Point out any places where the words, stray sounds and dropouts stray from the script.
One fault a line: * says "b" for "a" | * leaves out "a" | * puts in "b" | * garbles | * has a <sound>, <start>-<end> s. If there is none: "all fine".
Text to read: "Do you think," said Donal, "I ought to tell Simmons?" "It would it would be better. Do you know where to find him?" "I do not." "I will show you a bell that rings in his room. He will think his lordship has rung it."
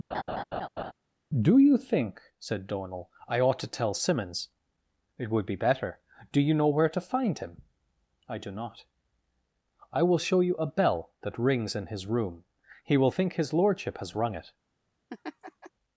* has a laugh, 0.1-0.9 s
* leaves out "it would"
* has a laugh, 15.1-15.7 s